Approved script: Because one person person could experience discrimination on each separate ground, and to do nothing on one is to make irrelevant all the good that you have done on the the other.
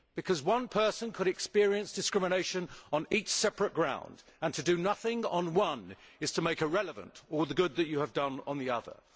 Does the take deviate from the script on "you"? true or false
false